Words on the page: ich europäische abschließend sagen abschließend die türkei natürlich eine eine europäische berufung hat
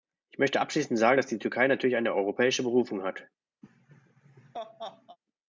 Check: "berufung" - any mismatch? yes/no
no